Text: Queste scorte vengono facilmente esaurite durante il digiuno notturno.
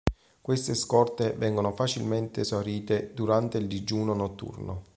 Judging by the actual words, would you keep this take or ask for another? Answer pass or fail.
pass